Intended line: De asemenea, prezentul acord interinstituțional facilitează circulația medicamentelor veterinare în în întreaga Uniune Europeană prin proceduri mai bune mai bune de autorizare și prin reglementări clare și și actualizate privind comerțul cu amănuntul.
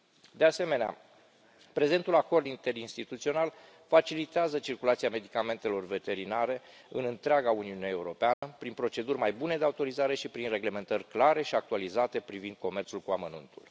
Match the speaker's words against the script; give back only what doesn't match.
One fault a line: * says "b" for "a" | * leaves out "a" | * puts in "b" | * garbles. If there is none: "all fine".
* leaves out "în"
* leaves out "mai bune"
* leaves out "și"